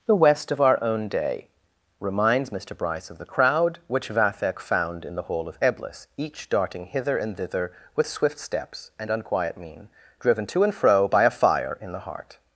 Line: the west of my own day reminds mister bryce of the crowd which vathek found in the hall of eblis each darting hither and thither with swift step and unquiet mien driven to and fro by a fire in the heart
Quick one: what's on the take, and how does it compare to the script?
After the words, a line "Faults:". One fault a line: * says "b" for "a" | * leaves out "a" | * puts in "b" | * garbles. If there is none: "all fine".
the west of our own day reminds mister bryce of the crowd which vathek found in the hall of eblis each darting hither and thither with swift steps and unquiet mien driven to and fro by a fire in the heart
Faults:
* says "our" for "my"
* says "steps" for "step"